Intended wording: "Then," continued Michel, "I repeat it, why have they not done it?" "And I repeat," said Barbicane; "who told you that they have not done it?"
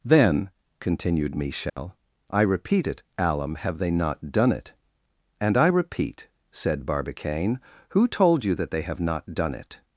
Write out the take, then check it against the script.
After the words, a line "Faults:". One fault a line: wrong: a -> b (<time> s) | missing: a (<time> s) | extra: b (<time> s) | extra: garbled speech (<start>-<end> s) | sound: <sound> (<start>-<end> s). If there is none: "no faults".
"Then," continued Michel, "I repeat it, alum have they not done it?" "And I repeat," said Barbicane; "who told you that they have not done it?"
Faults:
sound: dropout (1.7-1.8 s)
wrong: why -> alum (3.2 s)